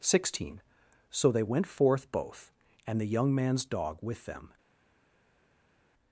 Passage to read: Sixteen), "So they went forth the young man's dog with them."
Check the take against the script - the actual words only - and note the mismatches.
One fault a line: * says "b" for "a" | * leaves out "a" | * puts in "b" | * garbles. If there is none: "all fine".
* puts in "both and"